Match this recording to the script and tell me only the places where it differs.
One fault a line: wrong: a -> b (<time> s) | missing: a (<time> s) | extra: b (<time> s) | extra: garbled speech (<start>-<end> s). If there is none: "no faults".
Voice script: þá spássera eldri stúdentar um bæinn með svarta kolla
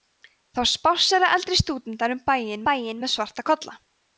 extra: bæinn (2.7 s)